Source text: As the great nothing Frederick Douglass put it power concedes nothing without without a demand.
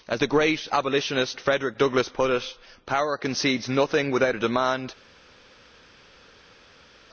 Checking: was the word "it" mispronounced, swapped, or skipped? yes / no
no